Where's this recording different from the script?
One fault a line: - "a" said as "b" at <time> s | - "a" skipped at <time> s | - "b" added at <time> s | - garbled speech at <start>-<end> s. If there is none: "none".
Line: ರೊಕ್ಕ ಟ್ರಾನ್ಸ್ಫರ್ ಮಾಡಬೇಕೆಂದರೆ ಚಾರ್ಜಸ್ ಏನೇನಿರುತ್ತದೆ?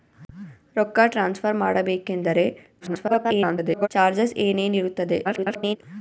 - garbled speech at 2.8-3.9 s
- garbled speech at 5.2-5.8 s